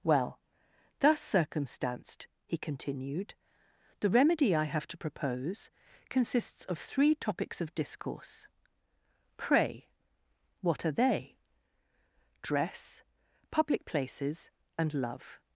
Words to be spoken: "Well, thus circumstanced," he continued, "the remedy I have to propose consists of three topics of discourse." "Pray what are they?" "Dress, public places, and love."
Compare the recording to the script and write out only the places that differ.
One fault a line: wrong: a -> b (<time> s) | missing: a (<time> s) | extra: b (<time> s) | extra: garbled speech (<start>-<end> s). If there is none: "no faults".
no faults